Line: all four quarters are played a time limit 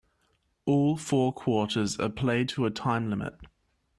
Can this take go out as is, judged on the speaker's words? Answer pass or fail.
fail